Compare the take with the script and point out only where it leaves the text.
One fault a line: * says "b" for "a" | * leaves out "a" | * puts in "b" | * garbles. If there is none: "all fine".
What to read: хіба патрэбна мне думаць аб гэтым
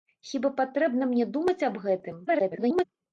* garbles